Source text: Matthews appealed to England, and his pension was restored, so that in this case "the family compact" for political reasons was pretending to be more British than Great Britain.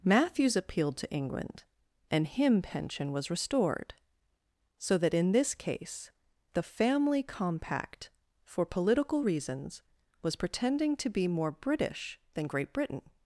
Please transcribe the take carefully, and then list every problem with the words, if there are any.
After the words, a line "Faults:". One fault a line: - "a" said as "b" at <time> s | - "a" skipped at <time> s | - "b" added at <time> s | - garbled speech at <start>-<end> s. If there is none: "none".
Matthews appealed to England, and him pension was restored, so that in this case "the family compact" for political reasons was pretending to be more British than Great Britain.
Faults:
- "his" said as "him" at 2.2 s